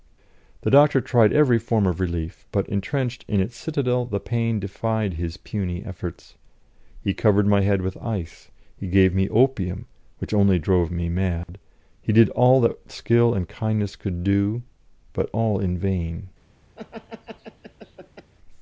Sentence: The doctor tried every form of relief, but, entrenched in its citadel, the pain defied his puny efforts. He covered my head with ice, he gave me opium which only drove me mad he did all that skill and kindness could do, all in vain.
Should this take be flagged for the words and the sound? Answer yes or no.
yes